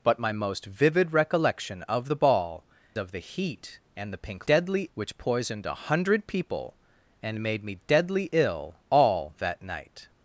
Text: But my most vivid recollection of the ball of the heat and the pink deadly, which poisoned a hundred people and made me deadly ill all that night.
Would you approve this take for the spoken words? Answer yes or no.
yes